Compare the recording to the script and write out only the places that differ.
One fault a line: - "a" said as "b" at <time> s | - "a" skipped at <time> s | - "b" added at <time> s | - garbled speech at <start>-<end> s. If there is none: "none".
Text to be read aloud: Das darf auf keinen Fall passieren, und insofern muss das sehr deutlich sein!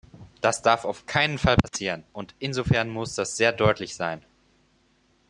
none